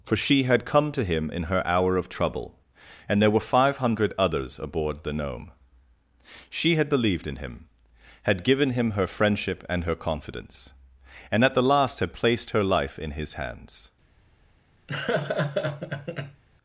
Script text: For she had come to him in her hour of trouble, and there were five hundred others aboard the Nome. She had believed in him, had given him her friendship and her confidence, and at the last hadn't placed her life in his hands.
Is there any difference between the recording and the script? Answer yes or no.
yes